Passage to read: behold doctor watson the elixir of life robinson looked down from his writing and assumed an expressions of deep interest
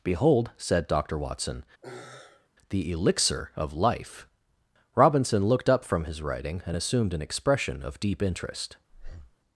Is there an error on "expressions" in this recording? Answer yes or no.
yes